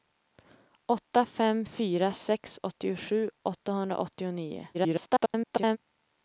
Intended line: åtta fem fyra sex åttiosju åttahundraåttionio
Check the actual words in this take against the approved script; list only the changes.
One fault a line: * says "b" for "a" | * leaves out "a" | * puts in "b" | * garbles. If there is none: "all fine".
* garbles